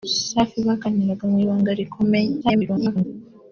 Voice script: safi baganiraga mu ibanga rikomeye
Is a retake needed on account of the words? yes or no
yes